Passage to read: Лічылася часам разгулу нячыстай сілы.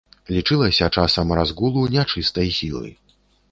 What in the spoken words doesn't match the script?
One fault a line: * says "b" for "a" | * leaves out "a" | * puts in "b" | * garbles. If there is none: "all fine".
all fine